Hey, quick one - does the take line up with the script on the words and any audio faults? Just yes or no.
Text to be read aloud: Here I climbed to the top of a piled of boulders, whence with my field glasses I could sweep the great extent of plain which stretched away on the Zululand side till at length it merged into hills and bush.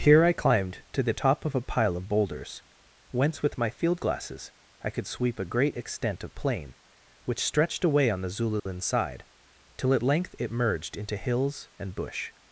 no